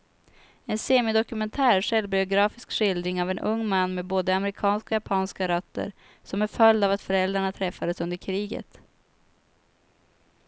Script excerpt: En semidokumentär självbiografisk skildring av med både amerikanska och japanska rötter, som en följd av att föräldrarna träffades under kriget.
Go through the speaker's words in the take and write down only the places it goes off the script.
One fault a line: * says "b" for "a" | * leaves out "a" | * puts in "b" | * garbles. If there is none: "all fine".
* puts in "en ung man"